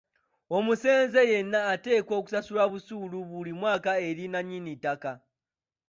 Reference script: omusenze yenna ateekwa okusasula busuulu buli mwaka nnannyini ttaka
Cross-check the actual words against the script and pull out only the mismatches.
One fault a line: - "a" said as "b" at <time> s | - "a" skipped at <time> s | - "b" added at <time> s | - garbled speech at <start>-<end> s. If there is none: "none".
- "eri" added at 4.1 s